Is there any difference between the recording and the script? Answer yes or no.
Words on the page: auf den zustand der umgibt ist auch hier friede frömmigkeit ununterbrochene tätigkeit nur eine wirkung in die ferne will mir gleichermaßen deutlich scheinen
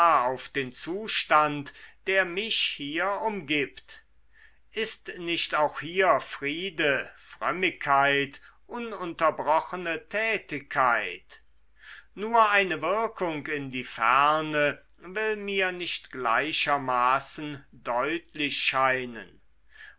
yes